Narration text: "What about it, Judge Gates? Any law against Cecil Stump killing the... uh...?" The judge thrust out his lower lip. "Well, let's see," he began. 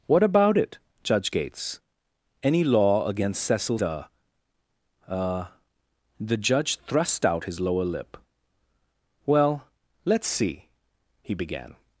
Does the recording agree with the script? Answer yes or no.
no